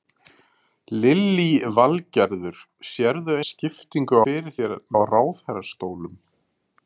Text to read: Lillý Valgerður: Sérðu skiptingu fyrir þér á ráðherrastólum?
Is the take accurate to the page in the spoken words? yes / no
yes